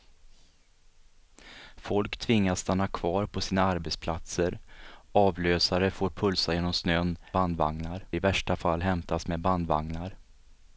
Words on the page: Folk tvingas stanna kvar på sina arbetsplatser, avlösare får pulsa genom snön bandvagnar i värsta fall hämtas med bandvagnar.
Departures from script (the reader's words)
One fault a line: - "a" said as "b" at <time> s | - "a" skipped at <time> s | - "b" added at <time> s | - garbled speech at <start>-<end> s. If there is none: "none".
none